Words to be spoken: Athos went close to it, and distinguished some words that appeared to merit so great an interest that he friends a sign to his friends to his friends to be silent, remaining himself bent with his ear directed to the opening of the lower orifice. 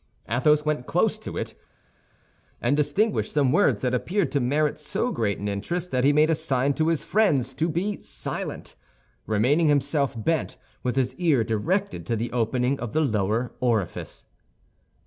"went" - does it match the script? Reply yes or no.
yes